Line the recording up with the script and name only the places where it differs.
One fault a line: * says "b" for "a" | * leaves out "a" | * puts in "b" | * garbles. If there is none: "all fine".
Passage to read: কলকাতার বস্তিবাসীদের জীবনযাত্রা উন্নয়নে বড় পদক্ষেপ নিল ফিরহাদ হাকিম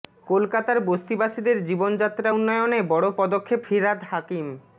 * leaves out "নিল"